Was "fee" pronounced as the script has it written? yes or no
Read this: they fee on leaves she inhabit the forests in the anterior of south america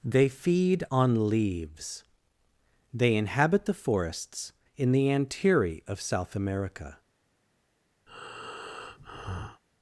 no